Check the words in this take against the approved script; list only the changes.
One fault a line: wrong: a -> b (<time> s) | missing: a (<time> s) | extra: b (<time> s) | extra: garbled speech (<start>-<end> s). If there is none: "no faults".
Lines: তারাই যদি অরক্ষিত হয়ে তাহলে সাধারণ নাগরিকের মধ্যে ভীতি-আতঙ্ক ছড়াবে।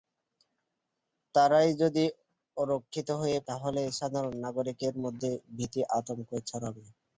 no faults